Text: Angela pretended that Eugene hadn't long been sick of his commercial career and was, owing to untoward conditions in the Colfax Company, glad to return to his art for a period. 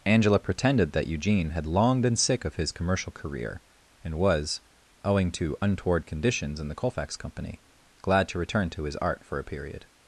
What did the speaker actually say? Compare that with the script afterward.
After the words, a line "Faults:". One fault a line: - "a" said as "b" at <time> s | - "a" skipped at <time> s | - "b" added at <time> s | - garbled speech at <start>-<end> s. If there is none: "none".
Angela pretended that Eugene had long been sick of his commercial career and was, owing to untoward conditions in the Colfax Company, glad to return to his art for a period.
Faults:
- "hadn't" said as "had" at 1.5 s